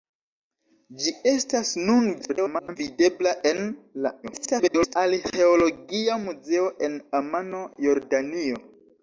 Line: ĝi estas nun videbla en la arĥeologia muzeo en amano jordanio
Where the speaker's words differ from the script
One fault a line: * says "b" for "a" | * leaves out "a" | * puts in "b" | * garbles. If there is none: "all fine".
* garbles
* garbles